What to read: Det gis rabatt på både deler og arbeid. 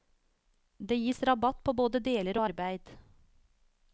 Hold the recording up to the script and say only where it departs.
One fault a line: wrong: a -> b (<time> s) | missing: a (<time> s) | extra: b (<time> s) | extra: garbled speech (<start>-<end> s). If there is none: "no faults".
no faults